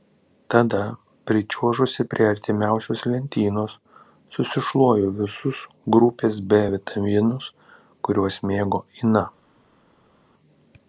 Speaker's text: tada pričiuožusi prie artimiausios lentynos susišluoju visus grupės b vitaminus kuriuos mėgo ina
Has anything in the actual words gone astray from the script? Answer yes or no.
no